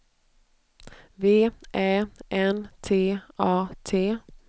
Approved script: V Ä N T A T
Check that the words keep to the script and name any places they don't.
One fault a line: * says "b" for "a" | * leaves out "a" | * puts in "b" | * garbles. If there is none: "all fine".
all fine